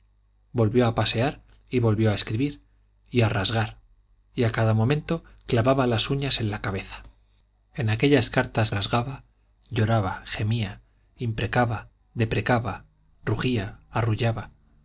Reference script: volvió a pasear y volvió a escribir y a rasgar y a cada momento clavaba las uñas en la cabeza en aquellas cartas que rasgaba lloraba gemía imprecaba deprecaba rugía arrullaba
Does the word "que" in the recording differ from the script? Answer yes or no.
yes